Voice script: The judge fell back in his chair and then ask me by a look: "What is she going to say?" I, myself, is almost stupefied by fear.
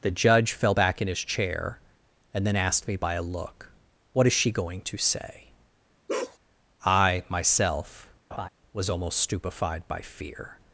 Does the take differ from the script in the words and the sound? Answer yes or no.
yes